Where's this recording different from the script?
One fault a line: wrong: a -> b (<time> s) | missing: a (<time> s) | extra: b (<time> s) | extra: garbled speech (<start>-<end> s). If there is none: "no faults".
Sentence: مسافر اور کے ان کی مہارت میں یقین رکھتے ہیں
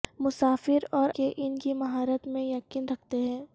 no faults